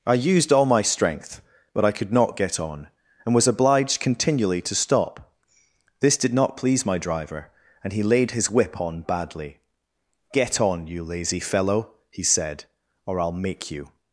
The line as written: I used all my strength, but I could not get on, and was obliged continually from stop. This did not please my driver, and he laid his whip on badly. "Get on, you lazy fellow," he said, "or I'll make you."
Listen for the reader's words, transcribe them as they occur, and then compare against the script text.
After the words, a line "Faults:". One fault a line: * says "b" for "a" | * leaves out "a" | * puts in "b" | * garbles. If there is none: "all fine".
I used all my strength, but I could not get on, and was obliged continually to stop. This did not please my driver, and he laid his whip on badly. "Get on, you lazy fellow," he said, "or I'll make you."
Faults:
* says "to" for "from"